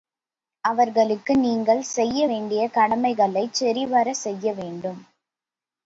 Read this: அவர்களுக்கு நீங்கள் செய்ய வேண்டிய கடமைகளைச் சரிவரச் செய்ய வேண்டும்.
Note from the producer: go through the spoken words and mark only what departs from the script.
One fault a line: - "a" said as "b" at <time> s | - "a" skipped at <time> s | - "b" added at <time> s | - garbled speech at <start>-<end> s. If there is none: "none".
none